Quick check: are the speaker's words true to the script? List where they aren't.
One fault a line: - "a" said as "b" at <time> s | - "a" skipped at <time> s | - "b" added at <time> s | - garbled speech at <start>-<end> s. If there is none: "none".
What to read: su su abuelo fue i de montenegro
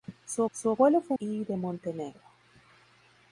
none